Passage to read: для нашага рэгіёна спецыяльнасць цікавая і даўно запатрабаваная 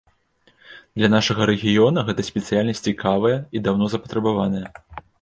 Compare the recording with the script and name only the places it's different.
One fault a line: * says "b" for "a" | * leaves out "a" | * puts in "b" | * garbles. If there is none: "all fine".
* puts in "гэта"